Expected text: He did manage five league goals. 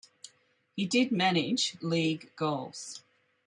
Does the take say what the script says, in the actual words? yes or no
no